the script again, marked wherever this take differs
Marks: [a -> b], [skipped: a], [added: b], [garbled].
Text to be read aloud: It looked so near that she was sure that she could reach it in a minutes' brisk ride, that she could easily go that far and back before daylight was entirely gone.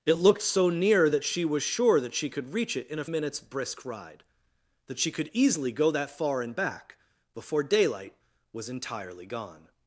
It looked so near that she was sure that she could reach it in a minutes' brisk ride, that she could easily go that far and back before daylight was entirely gone.